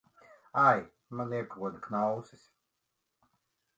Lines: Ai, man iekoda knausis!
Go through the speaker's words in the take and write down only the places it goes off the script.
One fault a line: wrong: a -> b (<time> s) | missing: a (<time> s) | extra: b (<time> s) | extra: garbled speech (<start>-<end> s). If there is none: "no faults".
no faults